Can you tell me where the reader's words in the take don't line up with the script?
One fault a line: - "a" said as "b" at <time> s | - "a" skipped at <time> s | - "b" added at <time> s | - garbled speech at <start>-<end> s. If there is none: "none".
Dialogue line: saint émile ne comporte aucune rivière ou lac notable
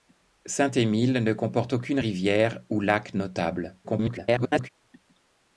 - garbled speech at 3.8-4.7 s